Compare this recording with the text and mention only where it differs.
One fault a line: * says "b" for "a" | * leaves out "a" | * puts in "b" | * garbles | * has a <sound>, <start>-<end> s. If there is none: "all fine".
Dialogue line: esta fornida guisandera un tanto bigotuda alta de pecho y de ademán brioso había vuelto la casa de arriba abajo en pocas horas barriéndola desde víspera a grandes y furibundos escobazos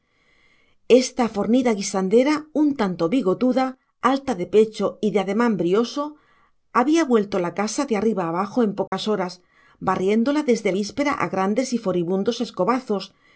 * has a dropout, 8.9-8.9 s